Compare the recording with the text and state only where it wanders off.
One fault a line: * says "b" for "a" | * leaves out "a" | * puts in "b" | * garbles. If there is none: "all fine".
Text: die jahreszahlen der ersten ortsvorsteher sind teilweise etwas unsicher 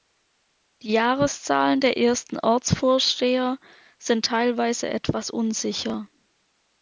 all fine